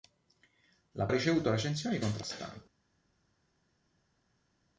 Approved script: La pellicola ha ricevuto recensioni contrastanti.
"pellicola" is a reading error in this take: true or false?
true